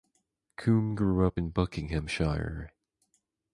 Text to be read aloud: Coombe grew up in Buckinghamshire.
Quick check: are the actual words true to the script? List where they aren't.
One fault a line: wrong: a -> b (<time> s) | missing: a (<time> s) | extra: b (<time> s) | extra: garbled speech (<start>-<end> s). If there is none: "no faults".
no faults